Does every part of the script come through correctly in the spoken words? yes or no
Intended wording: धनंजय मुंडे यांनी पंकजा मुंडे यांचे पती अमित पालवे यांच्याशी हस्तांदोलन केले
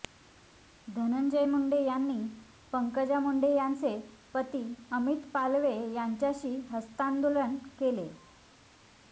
yes